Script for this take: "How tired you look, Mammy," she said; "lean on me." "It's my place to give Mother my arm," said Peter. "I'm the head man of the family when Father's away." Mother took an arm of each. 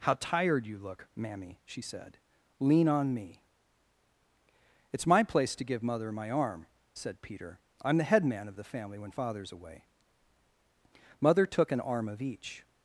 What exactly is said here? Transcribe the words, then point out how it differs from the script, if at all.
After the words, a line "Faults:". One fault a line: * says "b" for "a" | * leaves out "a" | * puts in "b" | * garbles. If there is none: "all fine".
"How tired you look, Mammy," she said; "lean on me." "It's my place to give Mother my arm," said Peter. "I'm the head man of the family when Father's away." Mother took an arm of each.
Faults:
all fine